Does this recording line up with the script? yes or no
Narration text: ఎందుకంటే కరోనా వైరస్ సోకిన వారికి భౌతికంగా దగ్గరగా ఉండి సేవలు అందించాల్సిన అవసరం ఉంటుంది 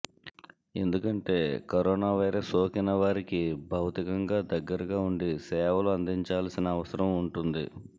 yes